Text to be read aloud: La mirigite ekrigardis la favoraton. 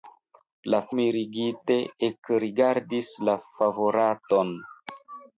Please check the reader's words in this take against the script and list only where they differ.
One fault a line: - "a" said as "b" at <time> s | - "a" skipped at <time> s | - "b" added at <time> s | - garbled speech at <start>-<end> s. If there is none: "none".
none